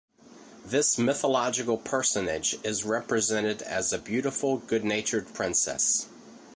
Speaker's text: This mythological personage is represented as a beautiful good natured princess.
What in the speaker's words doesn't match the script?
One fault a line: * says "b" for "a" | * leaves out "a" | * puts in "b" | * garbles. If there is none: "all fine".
all fine